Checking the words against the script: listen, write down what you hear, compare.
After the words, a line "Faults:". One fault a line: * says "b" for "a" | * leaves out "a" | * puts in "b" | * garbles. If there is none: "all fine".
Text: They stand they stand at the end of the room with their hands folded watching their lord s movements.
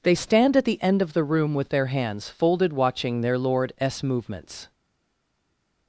They stand at the end of the room with their hands folded watching their lord s movements.
Faults:
* leaves out "they stand"